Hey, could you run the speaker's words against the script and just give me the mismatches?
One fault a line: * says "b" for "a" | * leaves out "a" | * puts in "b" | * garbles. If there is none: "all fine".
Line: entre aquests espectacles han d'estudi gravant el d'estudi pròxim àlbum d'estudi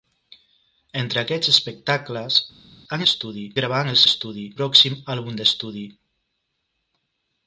all fine